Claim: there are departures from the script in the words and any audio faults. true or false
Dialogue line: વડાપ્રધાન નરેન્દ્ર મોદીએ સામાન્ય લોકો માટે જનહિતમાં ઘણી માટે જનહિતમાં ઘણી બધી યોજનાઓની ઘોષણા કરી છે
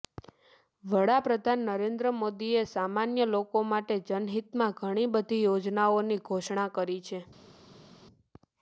true